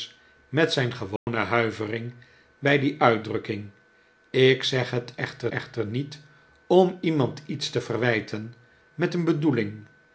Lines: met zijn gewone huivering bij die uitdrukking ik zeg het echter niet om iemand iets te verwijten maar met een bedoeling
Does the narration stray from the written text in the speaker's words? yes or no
yes